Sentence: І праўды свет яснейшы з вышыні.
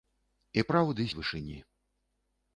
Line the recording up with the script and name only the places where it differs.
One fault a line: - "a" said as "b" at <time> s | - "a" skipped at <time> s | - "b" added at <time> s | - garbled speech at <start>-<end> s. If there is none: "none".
- "свет яснейшы" skipped at 1.1 s